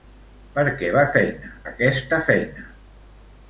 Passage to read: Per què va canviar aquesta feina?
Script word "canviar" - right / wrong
wrong